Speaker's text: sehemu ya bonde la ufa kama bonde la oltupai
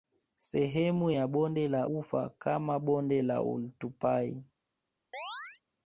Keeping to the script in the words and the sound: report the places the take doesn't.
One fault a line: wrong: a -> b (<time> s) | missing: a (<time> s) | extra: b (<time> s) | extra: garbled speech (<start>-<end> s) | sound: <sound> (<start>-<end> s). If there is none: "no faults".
sound: chirp (5.1-5.6 s)